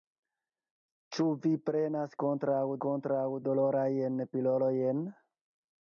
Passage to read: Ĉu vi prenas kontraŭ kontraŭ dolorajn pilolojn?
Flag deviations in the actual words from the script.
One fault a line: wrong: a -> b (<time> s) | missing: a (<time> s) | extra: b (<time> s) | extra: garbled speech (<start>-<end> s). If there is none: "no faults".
no faults